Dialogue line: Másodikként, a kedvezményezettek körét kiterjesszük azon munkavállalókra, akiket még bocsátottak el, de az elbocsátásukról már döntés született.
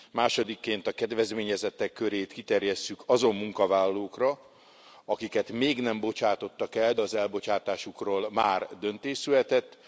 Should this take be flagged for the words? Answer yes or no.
yes